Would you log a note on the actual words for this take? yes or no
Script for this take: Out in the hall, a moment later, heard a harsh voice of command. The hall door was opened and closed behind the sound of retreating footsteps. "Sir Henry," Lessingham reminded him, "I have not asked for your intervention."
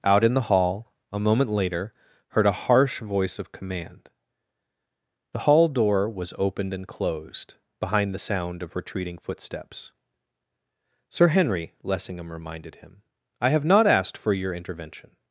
no